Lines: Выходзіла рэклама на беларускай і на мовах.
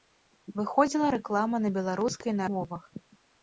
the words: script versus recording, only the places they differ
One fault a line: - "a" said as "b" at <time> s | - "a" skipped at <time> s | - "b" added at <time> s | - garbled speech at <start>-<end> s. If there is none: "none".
none